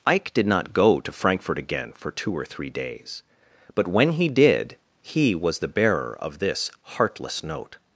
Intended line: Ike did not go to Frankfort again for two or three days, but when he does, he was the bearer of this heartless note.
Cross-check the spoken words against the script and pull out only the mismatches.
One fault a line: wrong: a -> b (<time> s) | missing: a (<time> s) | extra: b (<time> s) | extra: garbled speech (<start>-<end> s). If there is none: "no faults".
wrong: does -> did (4.3 s)